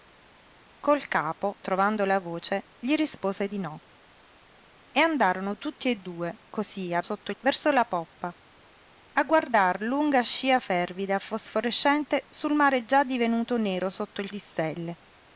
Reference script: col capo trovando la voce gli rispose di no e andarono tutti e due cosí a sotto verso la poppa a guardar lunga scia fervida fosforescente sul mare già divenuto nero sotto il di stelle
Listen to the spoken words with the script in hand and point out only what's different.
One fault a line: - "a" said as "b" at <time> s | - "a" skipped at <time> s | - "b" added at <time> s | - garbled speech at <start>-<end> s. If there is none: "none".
none